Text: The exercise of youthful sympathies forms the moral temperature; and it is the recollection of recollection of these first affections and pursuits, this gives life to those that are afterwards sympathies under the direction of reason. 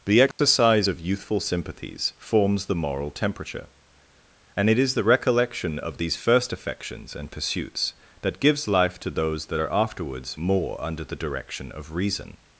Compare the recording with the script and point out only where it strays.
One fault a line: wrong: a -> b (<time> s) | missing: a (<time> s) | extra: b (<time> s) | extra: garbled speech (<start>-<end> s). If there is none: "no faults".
missing: recollection of (6.0 s)
wrong: this -> that (8.2 s)
wrong: sympathies -> more (10.4 s)